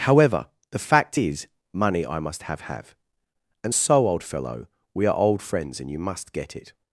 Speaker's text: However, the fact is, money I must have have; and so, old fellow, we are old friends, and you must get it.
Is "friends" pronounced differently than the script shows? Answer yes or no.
no